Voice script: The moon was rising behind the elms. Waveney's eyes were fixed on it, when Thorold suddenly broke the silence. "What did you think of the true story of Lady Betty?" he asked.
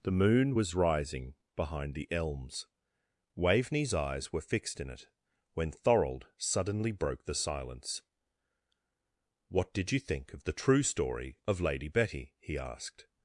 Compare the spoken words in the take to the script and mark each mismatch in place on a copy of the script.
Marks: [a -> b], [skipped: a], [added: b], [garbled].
The moon was rising behind the elms. Waveney's eyes were fixed [on -> in] it, when Thorold suddenly broke the silence. "What did you think of the true story of Lady Betty?" he asked.